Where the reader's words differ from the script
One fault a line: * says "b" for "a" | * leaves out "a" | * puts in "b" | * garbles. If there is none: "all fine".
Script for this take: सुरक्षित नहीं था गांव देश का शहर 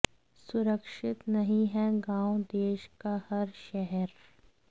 * says "है" for "था"
* puts in "हर"